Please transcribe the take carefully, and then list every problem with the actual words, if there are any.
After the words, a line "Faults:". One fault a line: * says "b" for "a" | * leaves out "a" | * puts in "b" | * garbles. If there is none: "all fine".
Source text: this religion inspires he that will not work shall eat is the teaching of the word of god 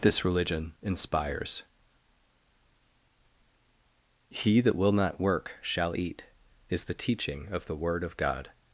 this religion inspires he that will not work shall eat is the teaching of the word of god
Faults:
all fine